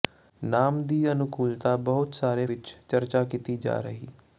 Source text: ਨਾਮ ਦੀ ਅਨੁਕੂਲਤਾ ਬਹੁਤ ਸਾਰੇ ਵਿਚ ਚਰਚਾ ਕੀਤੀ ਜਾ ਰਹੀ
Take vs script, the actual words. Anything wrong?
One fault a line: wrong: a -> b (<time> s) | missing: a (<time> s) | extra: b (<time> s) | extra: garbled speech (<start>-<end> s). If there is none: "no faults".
no faults